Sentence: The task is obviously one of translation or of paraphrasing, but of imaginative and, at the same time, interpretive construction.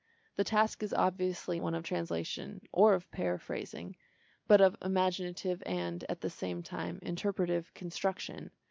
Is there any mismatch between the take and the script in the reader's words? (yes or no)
no